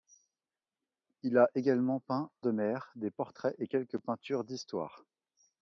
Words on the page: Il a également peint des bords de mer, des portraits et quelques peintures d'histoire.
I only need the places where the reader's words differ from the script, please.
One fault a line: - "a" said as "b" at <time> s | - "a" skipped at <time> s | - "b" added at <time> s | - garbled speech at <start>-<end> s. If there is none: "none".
- "des bords" skipped at 2.3 s